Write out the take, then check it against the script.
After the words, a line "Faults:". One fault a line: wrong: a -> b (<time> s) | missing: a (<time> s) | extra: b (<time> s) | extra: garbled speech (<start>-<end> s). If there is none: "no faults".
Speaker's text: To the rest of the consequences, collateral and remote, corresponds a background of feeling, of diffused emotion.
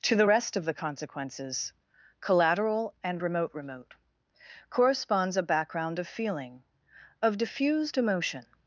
To the rest of the consequences, collateral and remote remote, corresponds a background of feeling, of diffused emotion.
Faults:
extra: remote (3.5 s)